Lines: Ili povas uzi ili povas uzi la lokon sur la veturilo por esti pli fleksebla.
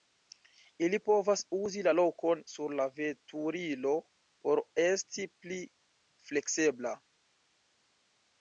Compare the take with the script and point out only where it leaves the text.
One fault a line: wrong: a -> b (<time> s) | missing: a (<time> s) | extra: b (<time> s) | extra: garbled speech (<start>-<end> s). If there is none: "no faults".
missing: ili povas uzi (1.8 s)